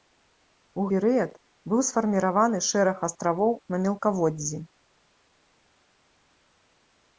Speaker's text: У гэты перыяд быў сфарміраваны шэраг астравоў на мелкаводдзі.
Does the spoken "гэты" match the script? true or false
false